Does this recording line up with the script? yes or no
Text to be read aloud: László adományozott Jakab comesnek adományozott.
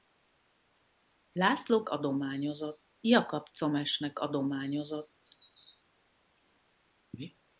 yes